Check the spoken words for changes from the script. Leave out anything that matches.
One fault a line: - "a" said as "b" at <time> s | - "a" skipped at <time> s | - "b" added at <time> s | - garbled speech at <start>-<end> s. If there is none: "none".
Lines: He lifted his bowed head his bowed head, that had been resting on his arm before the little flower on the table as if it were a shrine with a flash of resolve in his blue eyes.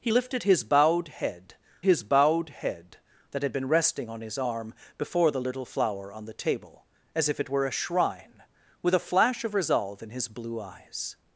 none